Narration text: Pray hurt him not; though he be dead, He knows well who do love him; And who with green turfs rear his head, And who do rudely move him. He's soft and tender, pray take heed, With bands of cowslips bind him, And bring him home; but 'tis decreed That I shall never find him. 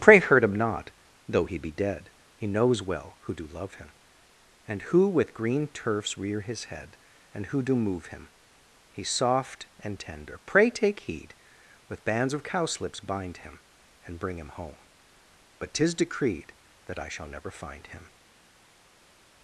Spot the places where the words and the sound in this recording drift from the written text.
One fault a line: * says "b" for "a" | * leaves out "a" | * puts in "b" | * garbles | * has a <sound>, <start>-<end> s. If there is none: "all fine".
* leaves out "rudely"